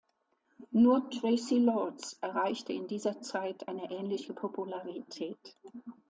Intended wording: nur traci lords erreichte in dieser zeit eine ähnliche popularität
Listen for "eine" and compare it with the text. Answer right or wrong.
right